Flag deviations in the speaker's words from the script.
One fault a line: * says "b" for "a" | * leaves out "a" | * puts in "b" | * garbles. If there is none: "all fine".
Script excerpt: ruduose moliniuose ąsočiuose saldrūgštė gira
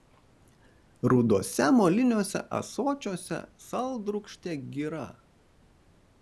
all fine